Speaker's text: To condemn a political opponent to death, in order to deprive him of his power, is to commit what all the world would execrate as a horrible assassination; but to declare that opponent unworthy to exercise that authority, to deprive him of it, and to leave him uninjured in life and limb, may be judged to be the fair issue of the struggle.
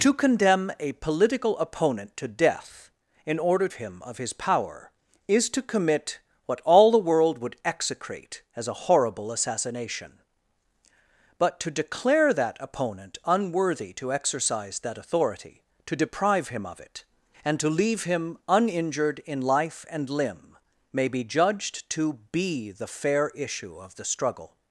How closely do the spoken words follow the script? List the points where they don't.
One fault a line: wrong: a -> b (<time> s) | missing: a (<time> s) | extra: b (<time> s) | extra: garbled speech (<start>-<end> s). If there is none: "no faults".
missing: to deprive (3.7 s)